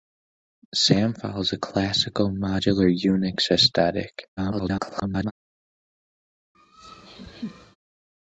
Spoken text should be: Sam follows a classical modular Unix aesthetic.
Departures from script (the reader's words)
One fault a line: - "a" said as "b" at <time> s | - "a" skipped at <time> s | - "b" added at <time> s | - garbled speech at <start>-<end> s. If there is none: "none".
- garbled speech at 4.4-5.3 s